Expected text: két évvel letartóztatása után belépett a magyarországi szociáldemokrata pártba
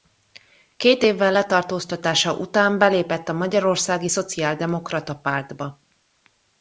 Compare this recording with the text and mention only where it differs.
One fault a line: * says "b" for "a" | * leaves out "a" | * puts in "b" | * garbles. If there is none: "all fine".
all fine